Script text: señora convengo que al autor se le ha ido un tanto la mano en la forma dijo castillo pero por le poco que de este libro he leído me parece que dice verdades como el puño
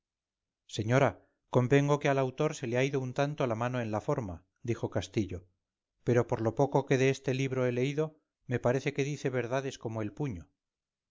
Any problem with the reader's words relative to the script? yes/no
yes